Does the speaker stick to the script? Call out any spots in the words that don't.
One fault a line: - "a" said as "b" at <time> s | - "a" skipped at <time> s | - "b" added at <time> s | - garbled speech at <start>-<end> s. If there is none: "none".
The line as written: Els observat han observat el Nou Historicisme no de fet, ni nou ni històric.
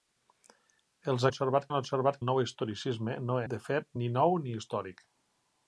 none